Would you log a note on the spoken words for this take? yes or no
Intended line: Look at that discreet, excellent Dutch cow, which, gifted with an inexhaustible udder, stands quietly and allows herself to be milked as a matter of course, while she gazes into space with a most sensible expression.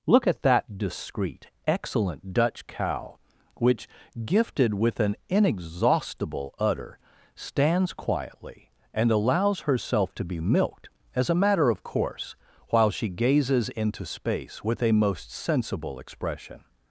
no